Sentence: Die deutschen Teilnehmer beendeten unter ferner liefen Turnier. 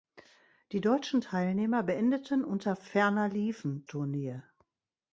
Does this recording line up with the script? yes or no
yes